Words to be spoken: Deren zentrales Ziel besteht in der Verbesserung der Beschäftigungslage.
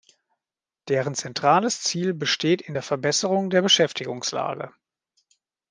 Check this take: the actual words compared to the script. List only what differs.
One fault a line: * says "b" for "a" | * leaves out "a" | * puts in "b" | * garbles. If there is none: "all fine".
all fine